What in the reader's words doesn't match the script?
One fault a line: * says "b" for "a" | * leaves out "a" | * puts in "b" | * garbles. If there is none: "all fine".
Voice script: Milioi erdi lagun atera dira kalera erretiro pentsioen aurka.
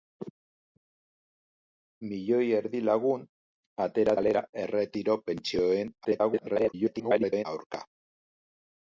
* leaves out "dira"
* garbles